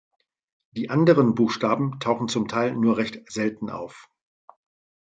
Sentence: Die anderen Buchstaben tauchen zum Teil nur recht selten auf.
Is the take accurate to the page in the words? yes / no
yes